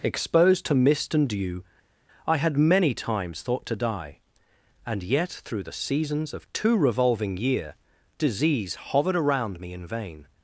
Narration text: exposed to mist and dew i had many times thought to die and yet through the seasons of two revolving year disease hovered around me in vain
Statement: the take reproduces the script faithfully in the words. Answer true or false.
true